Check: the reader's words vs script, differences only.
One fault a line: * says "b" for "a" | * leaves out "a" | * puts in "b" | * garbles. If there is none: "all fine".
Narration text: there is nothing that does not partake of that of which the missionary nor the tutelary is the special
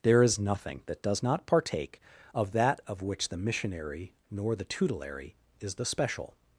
all fine